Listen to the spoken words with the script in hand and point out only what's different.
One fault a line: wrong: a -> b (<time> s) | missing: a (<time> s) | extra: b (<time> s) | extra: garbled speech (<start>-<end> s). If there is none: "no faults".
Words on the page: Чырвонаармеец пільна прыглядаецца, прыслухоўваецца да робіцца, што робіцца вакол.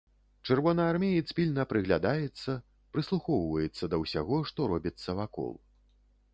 wrong: робіцца -> ўсяго (4.1 s)